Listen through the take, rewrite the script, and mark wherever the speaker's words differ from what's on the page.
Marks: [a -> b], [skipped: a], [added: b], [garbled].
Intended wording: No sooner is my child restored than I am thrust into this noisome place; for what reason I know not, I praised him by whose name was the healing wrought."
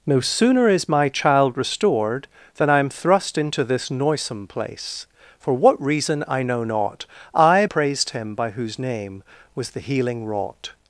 No sooner is my child restored than I am thrust into this noisome place; for what reason I know not, I praised him by whose name was the healing wrought."